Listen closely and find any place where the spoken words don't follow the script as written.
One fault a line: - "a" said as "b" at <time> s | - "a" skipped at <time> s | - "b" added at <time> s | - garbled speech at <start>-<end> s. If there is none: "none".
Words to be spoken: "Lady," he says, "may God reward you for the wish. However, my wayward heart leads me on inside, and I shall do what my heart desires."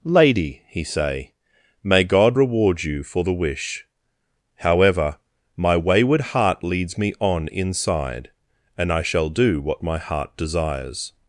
- "says" said as "say" at 0.8 s